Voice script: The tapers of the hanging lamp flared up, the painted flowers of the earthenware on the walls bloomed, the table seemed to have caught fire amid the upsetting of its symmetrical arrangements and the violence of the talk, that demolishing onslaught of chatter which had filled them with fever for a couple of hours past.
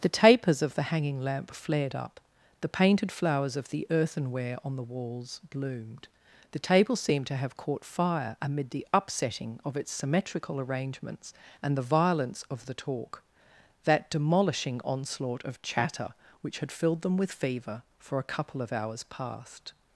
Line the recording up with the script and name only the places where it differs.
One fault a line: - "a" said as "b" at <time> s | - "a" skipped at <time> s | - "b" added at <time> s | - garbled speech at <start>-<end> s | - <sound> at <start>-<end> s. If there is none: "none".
none